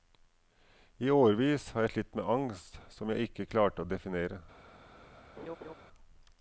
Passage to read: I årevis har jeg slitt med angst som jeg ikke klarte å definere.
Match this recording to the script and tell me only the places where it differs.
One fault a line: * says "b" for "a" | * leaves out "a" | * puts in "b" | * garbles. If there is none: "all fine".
all fine